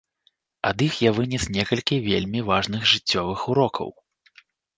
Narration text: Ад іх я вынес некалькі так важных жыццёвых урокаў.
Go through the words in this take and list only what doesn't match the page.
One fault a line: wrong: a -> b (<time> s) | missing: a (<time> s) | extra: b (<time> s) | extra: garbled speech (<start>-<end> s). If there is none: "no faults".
wrong: так -> вельмі (2.1 s)